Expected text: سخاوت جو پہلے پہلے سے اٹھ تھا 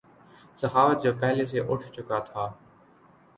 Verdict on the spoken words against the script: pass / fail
fail